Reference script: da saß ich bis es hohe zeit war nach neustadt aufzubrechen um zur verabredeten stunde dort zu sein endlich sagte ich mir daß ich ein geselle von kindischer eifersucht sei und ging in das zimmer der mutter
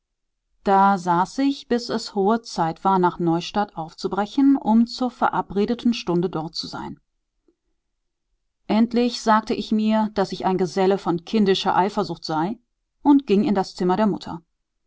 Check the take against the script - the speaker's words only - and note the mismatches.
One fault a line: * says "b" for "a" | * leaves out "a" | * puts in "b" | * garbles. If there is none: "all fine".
all fine